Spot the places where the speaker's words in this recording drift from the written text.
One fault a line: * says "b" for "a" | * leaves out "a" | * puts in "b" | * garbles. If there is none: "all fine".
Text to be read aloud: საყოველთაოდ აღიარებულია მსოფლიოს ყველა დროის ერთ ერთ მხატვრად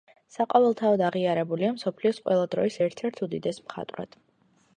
* puts in "უდიდეს"